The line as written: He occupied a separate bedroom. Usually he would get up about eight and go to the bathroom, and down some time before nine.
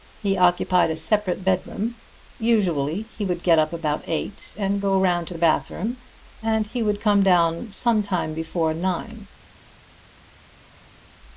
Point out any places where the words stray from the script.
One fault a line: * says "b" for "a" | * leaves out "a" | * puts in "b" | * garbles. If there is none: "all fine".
* puts in "round"
* puts in "he would come"